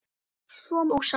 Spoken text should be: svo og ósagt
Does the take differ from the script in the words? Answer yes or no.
no